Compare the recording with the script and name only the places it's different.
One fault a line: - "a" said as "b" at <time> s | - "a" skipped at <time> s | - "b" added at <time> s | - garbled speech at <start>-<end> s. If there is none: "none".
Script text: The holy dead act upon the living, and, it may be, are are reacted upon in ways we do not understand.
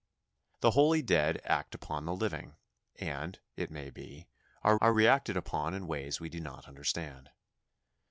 none